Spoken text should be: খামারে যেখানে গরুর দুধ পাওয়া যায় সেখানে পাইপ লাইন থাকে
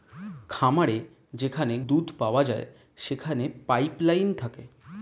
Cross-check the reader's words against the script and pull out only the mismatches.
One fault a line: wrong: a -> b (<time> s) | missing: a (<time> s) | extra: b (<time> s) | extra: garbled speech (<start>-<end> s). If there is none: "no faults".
missing: গরুর (1.8 s)